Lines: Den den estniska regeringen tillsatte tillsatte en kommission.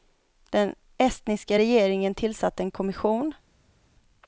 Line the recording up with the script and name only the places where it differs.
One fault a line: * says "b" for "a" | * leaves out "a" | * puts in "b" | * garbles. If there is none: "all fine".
* leaves out "den"
* leaves out "tillsatte"